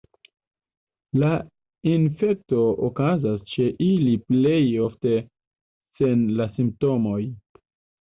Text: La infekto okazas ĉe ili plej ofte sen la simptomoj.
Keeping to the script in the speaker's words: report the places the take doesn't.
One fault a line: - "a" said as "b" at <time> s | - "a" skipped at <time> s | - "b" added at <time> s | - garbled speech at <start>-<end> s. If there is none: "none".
none